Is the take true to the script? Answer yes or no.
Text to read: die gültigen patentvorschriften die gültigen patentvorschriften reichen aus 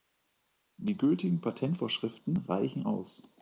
no